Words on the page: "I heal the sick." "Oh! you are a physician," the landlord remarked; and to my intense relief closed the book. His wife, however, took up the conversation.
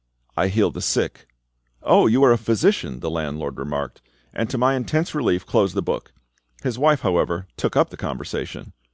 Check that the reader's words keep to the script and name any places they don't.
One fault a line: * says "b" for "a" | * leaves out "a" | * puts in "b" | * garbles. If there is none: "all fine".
all fine